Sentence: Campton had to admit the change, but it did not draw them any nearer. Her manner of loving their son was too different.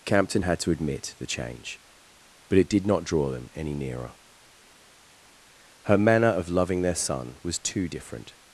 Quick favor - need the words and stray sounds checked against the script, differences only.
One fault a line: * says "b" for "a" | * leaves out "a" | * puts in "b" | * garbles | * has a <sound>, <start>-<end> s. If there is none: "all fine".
all fine